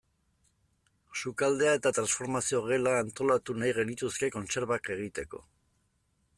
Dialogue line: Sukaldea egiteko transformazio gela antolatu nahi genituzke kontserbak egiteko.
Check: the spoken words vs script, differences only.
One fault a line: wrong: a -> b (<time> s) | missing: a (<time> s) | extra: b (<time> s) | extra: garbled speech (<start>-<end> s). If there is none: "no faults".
wrong: egiteko -> eta (1.8 s)